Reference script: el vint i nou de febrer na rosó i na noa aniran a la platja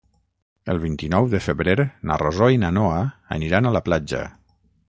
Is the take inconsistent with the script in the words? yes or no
no